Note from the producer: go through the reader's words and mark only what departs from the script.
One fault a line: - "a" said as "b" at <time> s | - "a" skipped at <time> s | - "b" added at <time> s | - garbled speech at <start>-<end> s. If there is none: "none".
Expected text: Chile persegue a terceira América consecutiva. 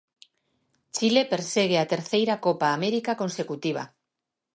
- "Copa" added at 2.5 s